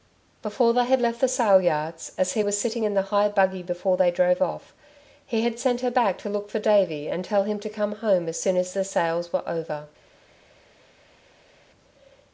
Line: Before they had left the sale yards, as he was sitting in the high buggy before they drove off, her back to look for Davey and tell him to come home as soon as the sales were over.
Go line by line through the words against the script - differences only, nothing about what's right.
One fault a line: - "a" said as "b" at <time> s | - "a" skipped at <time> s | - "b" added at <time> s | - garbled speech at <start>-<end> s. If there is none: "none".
- "he had sent" added at 5.3 s